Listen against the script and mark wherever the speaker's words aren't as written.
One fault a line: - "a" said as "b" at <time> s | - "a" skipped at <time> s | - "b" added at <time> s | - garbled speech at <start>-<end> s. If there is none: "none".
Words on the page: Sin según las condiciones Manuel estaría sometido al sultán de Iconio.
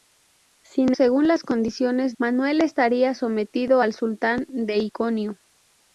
none